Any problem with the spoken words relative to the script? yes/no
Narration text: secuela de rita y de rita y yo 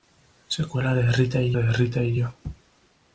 no